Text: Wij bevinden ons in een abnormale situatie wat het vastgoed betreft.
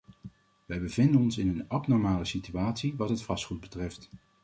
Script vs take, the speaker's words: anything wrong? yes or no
no